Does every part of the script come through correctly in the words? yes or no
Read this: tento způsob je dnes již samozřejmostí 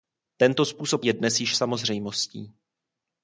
yes